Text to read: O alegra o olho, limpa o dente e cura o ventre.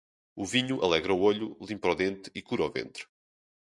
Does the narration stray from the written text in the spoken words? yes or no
yes